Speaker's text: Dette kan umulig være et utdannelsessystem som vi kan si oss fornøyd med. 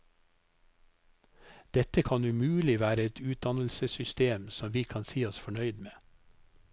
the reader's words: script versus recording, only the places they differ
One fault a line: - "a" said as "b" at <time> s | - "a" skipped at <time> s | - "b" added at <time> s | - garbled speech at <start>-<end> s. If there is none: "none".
none